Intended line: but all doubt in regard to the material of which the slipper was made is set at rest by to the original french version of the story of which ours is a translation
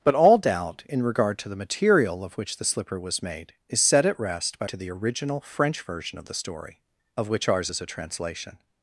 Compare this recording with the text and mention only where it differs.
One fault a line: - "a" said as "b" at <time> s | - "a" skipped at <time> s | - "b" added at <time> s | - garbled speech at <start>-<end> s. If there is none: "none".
none